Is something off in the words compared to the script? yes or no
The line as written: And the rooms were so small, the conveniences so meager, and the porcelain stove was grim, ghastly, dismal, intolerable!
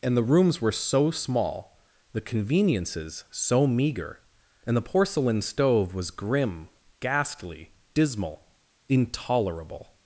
no